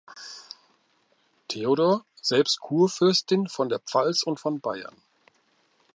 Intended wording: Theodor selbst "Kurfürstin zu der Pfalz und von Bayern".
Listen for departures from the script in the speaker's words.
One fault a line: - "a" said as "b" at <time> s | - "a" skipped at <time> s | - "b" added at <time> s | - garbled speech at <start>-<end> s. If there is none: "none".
- "zu" said as "von" at 3.5 s